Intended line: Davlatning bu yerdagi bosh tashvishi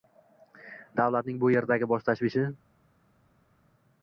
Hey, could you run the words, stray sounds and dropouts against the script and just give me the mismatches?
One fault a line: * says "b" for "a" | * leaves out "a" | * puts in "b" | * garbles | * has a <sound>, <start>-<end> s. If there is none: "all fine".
all fine